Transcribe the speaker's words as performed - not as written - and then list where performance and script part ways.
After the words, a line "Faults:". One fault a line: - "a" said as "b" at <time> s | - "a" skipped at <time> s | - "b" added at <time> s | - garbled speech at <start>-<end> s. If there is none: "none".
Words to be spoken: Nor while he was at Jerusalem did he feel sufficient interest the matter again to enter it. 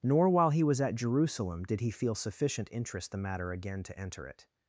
Nor while he was at Jerusalem did he feel sufficient interest the matter again to enter it.
Faults:
none